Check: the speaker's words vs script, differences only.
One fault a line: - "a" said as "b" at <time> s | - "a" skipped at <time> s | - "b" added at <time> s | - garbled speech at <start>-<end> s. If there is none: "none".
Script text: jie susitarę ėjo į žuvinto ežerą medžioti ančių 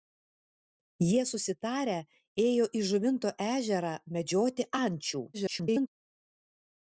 - garbled speech at 5.3-5.9 s